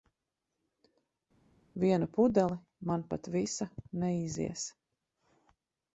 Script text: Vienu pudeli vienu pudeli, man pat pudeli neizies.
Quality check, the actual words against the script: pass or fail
fail